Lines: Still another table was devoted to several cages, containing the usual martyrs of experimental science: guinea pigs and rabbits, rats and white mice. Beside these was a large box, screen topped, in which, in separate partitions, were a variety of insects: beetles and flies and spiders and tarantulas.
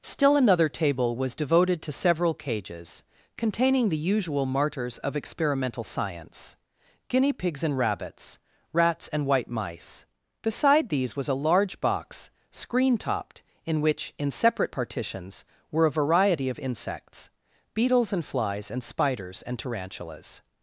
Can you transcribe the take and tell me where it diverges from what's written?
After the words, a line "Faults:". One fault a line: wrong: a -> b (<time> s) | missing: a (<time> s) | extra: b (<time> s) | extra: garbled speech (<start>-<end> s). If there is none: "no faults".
Still another table was devoted to several cages, containing the usual martyrs of experimental science: guinea pigs and rabbits, rats and white mice. Beside these was a large box, screen topped, in which, in separate partitions, were a variety of insects: beetles and flies and spiders and tarantulas.
Faults:
no faults